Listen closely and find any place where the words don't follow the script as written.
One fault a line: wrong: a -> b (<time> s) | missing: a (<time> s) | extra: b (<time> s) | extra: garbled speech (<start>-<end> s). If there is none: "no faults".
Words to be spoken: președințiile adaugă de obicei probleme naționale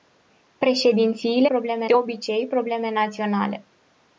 wrong: adaugă -> probleme (1.4 s)